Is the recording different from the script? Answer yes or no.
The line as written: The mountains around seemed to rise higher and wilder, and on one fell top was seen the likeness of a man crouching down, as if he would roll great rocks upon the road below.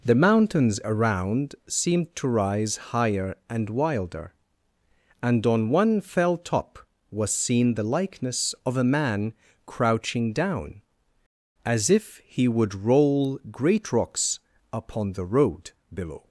no